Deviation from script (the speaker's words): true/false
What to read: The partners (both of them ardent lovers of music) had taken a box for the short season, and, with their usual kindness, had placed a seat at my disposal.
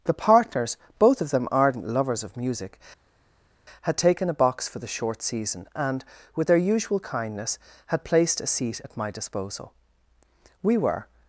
true